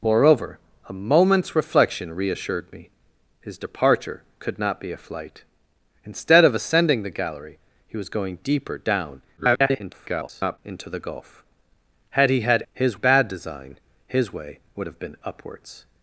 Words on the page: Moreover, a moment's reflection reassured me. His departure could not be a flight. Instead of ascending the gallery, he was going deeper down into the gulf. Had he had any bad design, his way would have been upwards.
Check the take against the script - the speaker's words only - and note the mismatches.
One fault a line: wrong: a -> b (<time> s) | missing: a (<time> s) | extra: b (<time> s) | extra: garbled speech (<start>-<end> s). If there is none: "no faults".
extra: garbled speech (9.4-10.6 s)
wrong: any -> his (12.7 s)